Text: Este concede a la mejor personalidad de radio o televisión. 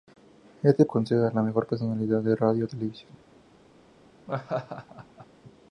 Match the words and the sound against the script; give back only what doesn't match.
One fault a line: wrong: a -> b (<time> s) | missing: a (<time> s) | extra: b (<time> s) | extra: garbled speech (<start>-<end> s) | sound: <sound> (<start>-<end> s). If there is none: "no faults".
sound: laugh (4.3-5.3 s)